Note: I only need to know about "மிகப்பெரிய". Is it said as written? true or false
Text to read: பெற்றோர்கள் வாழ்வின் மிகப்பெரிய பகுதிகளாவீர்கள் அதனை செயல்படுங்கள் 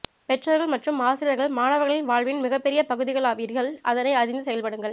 true